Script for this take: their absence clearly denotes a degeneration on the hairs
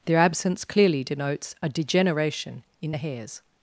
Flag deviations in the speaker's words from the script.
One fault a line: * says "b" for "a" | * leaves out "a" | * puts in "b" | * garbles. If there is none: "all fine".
* says "in" for "on"